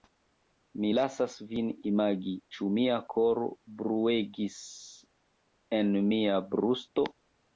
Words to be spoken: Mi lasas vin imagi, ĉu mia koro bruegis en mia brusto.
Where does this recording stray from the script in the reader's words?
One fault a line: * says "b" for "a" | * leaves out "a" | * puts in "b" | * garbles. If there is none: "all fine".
all fine